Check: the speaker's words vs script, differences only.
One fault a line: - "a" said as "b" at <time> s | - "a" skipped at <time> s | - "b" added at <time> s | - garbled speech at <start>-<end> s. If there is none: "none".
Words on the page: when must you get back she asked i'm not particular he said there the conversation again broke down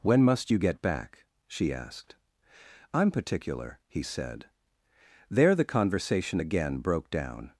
- "not" skipped at 3.1 s